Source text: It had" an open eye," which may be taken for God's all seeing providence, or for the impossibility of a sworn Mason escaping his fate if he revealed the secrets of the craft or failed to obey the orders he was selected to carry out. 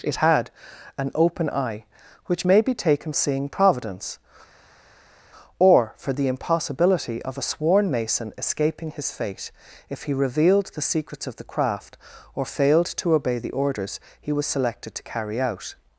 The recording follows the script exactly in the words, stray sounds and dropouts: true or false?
false